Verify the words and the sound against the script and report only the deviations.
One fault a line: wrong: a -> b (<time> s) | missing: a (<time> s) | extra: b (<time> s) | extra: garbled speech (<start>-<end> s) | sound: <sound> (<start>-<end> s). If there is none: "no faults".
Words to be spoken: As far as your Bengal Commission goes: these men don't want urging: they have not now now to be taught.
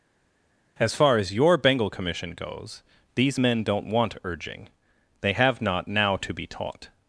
missing: now (6.2 s)